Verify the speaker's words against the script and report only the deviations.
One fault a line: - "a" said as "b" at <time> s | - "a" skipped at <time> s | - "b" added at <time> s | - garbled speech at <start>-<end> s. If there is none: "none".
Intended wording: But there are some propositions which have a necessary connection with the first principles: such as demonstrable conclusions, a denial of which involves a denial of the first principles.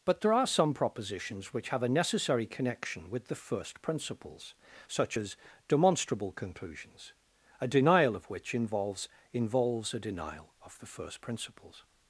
- "involves" added at 9.3 s